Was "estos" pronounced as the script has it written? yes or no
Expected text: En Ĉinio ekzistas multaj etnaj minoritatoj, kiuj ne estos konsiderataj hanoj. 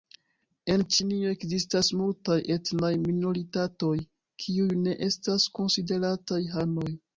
no